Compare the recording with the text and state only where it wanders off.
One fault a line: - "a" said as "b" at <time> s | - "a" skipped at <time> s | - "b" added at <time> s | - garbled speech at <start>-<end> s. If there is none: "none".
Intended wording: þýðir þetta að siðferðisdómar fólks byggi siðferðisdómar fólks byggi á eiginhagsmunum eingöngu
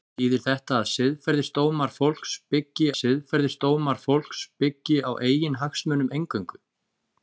none